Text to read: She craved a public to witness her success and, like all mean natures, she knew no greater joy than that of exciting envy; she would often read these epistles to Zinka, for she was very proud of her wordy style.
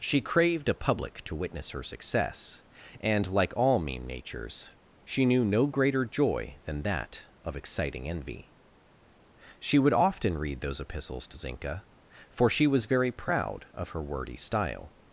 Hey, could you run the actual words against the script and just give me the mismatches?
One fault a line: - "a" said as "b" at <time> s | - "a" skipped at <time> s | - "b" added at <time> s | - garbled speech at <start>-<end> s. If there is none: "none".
- "these" said as "those" at 10.6 s